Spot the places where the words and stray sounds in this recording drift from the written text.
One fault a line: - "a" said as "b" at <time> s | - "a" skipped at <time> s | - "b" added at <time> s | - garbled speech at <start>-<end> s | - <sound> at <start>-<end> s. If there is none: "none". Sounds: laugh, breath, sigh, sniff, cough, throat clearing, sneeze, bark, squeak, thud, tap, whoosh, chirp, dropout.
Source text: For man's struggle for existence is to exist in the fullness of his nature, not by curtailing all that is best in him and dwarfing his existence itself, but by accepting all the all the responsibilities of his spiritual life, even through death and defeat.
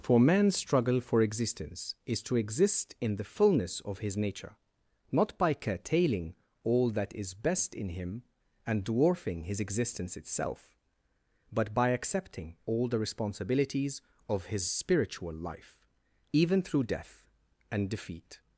- "all the" skipped at 13.0 s